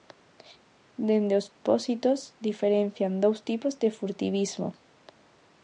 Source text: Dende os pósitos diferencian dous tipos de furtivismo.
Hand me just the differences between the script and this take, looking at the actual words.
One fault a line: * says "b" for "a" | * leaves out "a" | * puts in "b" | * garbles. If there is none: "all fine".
all fine